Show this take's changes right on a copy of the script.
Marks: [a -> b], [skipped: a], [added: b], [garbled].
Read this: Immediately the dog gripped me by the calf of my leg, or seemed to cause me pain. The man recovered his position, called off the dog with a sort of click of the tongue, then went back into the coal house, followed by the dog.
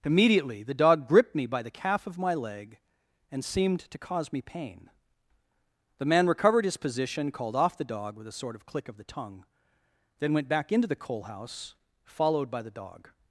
Immediately the dog gripped me by the calf of my leg, [or -> and] seemed to cause me pain. The man recovered his position, called off the dog with a sort of click of the tongue, then went back into the coal house, followed by the dog.